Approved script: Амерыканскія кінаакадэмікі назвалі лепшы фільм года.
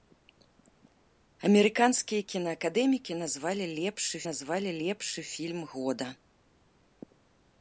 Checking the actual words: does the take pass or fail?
fail